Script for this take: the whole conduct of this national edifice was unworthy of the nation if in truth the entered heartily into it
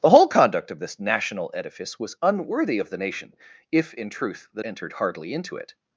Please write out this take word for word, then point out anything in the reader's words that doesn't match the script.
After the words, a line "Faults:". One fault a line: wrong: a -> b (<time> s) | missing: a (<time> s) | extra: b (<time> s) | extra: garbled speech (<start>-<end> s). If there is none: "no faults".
the whole conduct of this national edifice was unworthy of the nation if in truth the entered heartily into it
Faults:
no faults